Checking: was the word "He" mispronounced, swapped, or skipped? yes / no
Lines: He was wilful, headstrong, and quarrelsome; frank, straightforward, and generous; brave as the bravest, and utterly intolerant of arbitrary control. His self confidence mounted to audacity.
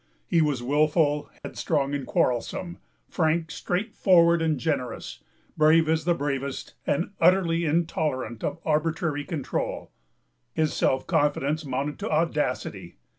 no